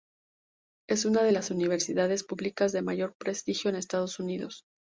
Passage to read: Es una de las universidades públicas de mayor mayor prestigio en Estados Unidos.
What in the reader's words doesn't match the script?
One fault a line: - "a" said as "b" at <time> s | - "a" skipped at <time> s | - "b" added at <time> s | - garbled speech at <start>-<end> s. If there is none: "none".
- "mayor" skipped at 3.1 s